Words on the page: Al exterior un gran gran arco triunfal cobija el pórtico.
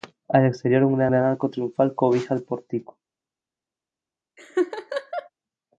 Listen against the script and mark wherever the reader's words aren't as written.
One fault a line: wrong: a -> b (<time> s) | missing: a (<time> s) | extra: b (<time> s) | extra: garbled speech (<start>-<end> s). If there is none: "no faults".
no faults